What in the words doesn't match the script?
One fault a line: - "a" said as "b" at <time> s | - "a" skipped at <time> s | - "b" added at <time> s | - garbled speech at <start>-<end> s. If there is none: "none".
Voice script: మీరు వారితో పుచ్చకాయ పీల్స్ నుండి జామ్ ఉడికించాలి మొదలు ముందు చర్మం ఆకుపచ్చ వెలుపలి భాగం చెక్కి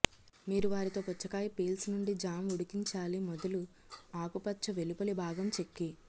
- "ముందు చర్మం" skipped at 3.6 s